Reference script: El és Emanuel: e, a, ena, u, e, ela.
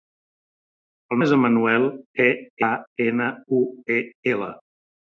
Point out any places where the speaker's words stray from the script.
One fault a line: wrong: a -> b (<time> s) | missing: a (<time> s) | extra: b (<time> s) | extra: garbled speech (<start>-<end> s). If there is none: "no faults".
no faults